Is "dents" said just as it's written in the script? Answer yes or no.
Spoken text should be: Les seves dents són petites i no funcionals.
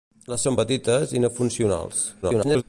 no